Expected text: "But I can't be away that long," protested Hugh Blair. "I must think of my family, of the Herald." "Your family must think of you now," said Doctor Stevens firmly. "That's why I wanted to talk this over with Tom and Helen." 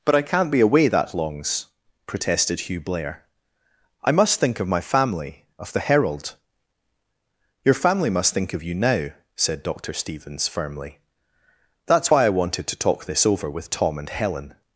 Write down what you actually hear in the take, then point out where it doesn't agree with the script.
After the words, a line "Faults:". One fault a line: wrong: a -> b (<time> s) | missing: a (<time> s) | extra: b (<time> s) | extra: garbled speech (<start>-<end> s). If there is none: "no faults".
"But I can't be away that longs," protested Hugh Blair. "I must think of my family, of the Herald." "Your family must think of you now," said Doctor Stevens firmly. "That's why I wanted to talk this over with Tom and Helen."
Faults:
wrong: long -> longs (1.1 s)